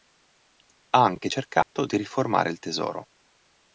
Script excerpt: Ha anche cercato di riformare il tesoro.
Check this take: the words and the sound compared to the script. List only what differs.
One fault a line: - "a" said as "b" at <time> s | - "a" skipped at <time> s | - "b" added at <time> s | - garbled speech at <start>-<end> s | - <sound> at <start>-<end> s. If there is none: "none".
- dropout at 1.6-1.8 s